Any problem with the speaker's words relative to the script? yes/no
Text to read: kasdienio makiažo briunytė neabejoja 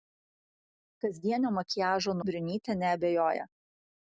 no